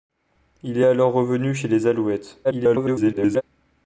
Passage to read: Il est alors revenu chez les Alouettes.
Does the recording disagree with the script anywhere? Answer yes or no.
yes